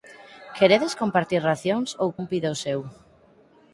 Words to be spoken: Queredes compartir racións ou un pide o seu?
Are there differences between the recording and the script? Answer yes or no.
no